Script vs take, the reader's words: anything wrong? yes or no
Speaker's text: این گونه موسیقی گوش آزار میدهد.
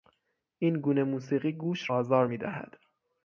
no